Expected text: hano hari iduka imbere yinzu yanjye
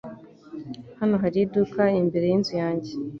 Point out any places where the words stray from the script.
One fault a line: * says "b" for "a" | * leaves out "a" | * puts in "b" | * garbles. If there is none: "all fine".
all fine